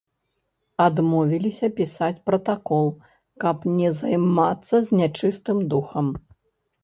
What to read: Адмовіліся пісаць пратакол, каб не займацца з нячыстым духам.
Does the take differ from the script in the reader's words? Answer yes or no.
no